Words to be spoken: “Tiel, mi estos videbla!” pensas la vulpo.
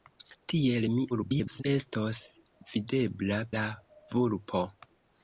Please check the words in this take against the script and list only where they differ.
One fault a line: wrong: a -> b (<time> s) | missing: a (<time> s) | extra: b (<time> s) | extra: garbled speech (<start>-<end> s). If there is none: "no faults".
extra: garbled speech (1.1-1.6 s)
missing: pensas (3.4 s)